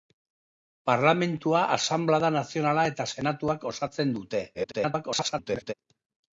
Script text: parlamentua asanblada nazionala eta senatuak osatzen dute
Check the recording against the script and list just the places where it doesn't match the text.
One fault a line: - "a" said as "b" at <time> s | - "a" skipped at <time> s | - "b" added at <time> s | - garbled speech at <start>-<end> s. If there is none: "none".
- garbled speech at 4.5-5.7 s